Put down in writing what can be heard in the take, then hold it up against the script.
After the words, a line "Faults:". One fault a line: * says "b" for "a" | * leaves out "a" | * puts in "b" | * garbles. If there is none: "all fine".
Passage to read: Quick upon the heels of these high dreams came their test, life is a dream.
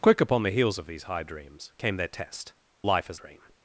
Quick upon the heels of these high dreams came their test, life is a dream.
Faults:
all fine